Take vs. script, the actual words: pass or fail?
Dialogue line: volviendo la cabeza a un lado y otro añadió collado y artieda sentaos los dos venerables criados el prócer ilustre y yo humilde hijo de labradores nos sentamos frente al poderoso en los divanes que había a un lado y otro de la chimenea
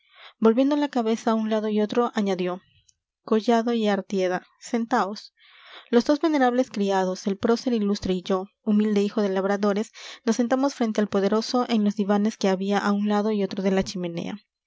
pass